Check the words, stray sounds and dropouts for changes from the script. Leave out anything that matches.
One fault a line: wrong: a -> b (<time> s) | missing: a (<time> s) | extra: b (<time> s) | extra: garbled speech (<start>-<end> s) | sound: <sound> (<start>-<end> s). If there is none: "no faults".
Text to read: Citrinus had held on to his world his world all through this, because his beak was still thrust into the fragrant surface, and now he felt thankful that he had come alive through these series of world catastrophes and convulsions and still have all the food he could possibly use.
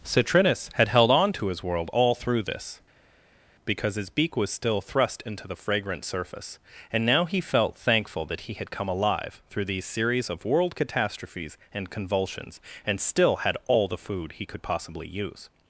missing: his world (1.9 s)
wrong: have -> had (13.4 s)